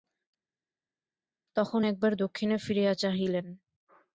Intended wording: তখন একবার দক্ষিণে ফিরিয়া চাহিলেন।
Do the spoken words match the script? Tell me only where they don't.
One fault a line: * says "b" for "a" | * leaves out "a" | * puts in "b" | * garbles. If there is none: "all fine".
all fine